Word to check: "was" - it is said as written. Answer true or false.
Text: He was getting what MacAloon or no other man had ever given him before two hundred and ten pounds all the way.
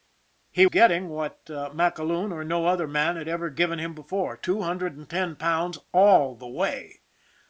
false